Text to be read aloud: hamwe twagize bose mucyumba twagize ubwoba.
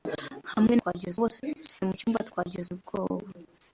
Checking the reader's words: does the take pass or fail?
pass